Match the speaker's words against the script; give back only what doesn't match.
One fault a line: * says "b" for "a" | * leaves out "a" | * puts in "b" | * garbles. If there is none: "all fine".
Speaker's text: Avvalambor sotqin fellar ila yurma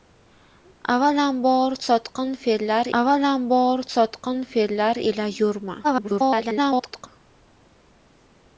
* puts in "avvalambor sotqin fellar"
* garbles